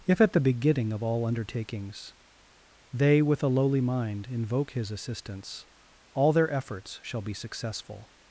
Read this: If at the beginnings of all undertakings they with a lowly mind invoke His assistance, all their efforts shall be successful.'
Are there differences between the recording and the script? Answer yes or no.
yes